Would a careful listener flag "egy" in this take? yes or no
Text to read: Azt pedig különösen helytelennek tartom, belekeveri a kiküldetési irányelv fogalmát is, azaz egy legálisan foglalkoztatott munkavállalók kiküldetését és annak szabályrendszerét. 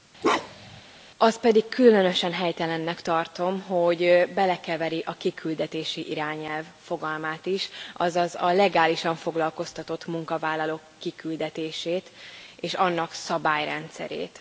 yes